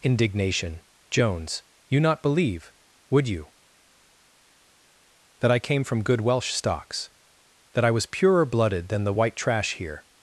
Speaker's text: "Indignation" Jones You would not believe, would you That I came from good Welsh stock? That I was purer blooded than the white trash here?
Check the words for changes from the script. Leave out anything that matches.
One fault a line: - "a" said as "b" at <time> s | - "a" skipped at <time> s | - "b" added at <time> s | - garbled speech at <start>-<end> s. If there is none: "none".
- "would" skipped at 2.0 s
- "stock" said as "stocks" at 6.5 s